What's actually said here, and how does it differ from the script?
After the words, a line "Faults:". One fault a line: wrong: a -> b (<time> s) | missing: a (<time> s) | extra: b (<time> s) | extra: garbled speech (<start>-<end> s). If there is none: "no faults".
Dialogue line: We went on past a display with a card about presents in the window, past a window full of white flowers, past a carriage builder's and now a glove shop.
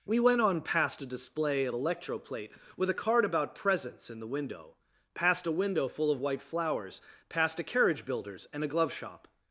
We went on past a display of electroplate with a card about presents in the window, past a window full of white flowers, past a carriage builder's and a glove shop.
Faults:
extra: of electroplate (1.6 s)
missing: now (8.6 s)